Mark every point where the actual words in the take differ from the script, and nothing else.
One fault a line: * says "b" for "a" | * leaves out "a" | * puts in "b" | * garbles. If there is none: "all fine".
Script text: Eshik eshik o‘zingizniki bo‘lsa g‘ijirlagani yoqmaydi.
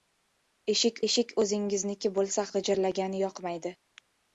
all fine